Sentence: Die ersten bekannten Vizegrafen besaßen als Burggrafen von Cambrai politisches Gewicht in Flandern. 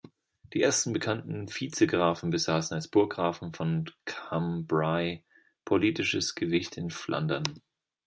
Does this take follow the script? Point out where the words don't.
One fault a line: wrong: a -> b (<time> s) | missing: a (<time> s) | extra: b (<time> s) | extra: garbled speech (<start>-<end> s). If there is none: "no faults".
no faults